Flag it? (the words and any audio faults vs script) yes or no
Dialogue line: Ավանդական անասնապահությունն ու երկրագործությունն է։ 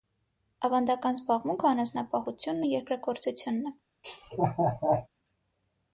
yes